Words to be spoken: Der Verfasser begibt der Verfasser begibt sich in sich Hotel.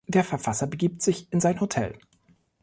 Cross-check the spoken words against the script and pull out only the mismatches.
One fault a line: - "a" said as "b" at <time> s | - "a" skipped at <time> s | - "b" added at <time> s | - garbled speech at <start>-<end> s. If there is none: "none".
- "der Verfasser begibt" skipped at 1.0 s
- "sich" said as "sein" at 1.4 s